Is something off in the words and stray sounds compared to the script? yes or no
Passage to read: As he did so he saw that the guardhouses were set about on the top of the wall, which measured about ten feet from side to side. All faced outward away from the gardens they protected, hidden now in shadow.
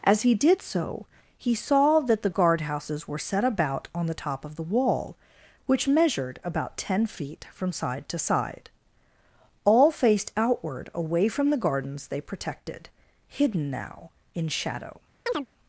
yes